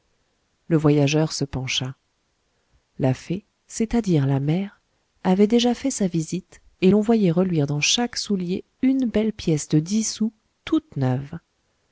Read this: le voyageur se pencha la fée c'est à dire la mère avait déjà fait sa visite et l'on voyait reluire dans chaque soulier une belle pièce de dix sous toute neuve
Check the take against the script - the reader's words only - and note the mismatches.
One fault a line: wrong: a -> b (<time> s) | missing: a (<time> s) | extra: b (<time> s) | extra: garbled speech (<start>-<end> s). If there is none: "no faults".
no faults